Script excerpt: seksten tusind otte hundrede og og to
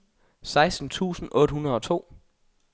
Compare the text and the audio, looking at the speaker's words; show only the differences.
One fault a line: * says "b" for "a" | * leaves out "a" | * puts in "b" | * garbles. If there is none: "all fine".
* leaves out "og"